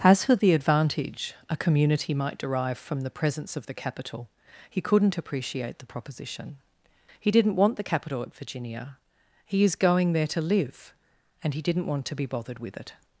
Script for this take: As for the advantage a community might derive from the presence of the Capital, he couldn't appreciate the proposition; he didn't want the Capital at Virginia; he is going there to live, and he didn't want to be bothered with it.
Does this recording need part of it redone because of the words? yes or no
no